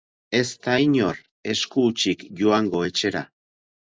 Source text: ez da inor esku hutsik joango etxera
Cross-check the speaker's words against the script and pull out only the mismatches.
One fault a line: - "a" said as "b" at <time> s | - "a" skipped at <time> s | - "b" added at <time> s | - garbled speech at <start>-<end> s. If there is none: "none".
none